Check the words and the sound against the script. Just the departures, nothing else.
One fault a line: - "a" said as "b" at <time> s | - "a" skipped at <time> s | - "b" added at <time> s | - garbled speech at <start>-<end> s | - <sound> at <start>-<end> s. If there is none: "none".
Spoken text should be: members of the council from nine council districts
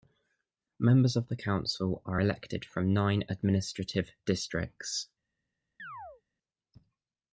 - "are elected" added at 2.1 s
- "council" said as "administrative" at 3.3 s
- chirp at 5.8-6.2 s